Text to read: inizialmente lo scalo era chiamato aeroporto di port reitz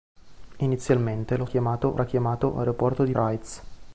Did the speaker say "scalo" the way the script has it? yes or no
no